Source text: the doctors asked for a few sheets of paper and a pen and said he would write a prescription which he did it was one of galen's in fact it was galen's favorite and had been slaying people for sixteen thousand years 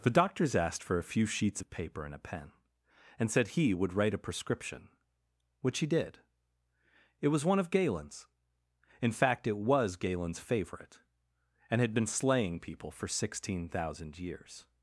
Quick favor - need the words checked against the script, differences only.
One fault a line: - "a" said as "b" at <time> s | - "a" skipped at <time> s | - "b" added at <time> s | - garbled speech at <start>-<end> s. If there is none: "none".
none